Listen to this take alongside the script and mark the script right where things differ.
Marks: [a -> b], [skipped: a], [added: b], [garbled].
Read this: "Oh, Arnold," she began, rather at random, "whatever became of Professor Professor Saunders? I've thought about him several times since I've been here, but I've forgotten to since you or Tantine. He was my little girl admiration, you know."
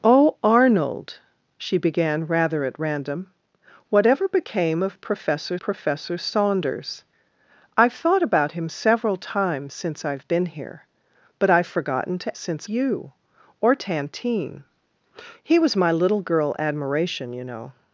"Oh, Arnold," she began, rather at random, "whatever became of Professor Professor Saunders? I've thought about him several times since I've been here, but I've forgotten to since you or Tantine. He was my little girl admiration, you know."